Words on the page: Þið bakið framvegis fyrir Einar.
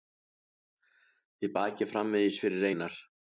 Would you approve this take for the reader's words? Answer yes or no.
yes